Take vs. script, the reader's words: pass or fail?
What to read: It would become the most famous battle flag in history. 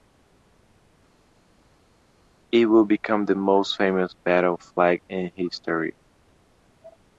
pass